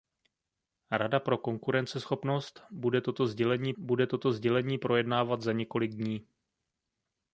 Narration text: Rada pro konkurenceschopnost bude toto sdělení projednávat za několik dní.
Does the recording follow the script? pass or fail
fail